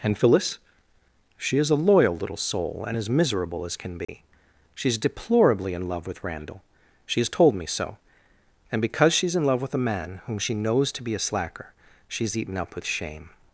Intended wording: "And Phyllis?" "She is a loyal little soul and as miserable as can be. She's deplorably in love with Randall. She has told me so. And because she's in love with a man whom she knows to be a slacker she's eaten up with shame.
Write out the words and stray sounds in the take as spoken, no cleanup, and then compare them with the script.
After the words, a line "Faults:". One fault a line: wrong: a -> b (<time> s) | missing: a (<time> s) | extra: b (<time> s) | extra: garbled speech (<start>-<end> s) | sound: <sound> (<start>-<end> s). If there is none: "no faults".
"And Phyllis?" "She is a loyal little soul and as miserable as can be. She's deplorably in love with Randall. She has told me so. And because she's in love with a man whom she knows to be a slacker she's eaten up with shame.
Faults:
sound: dropout (4.0-4.1 s)